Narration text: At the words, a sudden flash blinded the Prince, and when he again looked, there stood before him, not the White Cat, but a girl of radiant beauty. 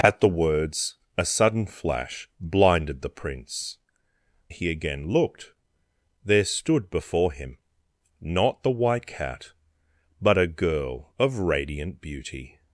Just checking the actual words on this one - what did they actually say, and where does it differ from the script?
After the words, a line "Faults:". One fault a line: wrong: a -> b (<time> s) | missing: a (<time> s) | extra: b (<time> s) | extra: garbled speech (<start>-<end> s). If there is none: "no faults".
At the words, a sudden flash blinded the Prince, he again looked, there stood before him, not the White Cat, but a girl of radiant beauty.
Faults:
missing: and when (3.8 s)